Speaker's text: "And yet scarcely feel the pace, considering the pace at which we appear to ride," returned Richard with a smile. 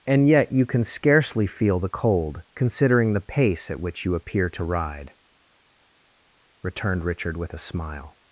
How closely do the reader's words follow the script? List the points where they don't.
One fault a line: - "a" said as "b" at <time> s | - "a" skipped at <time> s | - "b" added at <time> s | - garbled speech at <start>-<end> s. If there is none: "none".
- "you can" added at 0.5 s
- "pace" said as "cold" at 1.9 s
- "we" said as "you" at 4.0 s